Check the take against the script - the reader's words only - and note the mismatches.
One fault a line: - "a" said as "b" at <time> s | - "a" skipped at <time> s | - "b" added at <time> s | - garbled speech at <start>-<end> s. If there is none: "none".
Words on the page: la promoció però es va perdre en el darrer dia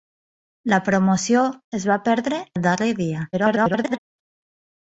- "però" skipped at 1.4 s
- "en" skipped at 2.4 s
- garbled speech at 3.3-4.0 s